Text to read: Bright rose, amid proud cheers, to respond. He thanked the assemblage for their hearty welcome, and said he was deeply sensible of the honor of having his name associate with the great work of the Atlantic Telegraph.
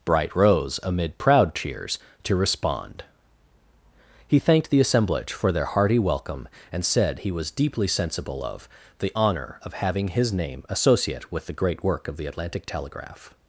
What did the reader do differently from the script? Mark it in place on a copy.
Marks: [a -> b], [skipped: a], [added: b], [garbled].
Bright rose, amid proud cheers, to respond. He thanked the assemblage for their hearty welcome, and said he was deeply sensible of the honor of having his name associate with the great work of the Atlantic Telegraph.